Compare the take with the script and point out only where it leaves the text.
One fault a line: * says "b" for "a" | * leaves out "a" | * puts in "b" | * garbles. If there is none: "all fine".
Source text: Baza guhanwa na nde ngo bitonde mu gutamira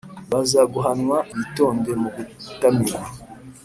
* leaves out "na nde ngo"